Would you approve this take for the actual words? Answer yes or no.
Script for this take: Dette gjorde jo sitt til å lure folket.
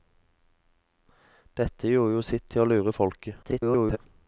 no